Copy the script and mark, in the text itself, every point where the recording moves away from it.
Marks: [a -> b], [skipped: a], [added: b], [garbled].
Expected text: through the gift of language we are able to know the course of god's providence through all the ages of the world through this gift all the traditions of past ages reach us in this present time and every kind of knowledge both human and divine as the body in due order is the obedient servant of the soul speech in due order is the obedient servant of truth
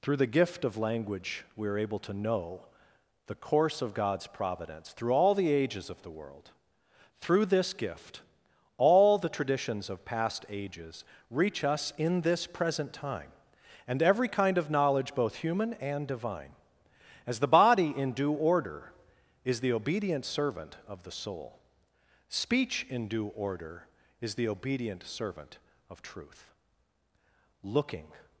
through the gift of language we are able to know the course of god's providence through all the ages of the world through this gift all the traditions of past ages reach us in this present time and every kind of knowledge both human and divine as the body in due order is the obedient servant of the soul speech in due order is the obedient servant of truth [added: looking]